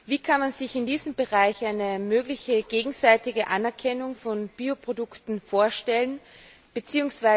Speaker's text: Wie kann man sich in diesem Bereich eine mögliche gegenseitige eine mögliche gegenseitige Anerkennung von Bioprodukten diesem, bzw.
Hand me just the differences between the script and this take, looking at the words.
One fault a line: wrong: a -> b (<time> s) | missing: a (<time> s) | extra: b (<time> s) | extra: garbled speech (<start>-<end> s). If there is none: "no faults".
missing: eine mögliche gegenseitige (3.5 s)
wrong: diesem -> vorstellen (5.4 s)